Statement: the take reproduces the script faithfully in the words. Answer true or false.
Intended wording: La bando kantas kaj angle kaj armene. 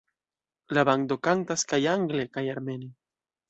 true